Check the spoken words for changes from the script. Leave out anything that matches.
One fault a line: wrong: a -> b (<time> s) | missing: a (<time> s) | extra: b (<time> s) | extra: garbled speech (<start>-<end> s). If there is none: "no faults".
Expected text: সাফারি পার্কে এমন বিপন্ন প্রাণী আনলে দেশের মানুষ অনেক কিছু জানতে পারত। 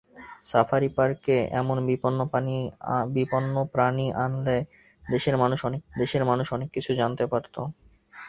extra: দেশের মানুষ অনেক (5.9 s)